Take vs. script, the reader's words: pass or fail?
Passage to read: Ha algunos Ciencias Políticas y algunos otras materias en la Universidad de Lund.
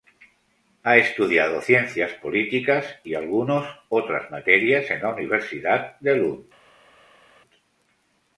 fail